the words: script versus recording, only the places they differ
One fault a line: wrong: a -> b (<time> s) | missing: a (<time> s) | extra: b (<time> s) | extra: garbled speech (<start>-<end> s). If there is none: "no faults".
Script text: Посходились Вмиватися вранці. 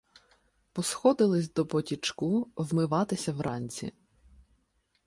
extra: до потічку (1.5 s)